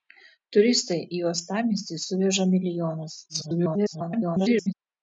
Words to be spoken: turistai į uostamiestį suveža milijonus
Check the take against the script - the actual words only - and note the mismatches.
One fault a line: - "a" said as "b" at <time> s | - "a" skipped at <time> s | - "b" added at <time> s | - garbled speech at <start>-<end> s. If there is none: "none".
- garbled speech at 3.3-4.7 s